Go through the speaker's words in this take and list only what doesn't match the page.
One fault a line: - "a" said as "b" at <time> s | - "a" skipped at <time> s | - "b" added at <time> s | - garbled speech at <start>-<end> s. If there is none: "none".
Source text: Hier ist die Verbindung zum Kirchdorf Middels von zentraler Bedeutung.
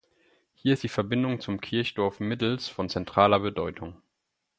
none